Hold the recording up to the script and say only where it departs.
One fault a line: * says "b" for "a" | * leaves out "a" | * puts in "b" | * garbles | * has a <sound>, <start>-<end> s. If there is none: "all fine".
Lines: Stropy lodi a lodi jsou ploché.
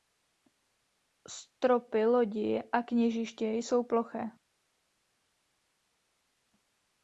* says "kněžiště" for "lodi"